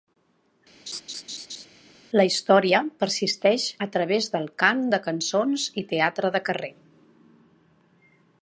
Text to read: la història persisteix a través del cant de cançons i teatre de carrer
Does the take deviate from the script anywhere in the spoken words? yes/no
no